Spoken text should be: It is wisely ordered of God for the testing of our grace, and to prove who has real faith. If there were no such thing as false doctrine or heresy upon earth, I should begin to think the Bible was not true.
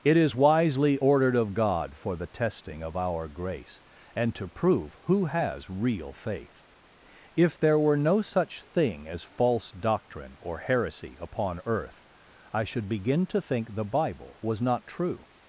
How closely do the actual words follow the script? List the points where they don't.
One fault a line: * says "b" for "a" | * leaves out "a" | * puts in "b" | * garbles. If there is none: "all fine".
all fine